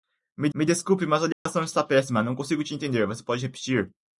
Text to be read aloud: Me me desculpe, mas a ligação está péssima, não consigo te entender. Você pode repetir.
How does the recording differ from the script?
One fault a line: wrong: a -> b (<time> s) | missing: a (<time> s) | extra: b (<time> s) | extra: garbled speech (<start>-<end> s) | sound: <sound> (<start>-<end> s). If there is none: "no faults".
sound: dropout (1.3-1.5 s)